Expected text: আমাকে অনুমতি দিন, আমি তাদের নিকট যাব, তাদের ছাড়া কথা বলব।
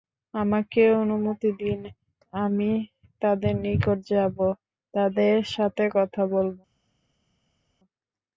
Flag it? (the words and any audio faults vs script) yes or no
yes